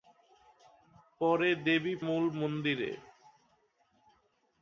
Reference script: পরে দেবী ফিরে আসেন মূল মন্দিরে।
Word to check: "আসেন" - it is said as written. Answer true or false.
false